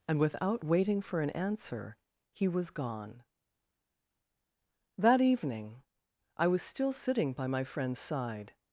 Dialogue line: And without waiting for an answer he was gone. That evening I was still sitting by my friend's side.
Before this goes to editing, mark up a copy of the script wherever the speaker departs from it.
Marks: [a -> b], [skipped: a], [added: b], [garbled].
And without waiting for an answer he was gone. That evening I was still sitting by my friend's side.